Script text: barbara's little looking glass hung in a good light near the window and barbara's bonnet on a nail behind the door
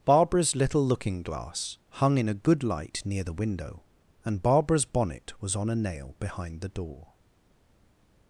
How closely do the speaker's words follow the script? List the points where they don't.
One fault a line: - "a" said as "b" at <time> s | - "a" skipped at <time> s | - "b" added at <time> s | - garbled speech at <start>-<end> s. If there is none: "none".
- "was" added at 5.4 s